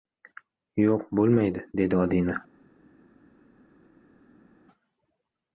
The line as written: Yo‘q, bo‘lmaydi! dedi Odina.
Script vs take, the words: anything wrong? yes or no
no